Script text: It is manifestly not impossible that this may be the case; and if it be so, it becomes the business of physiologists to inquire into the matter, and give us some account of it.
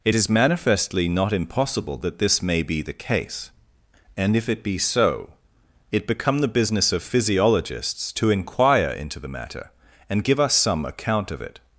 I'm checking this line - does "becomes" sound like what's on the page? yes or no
no